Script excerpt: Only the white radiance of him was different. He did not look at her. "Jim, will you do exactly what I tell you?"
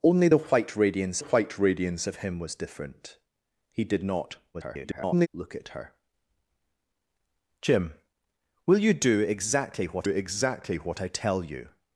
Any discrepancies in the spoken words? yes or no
yes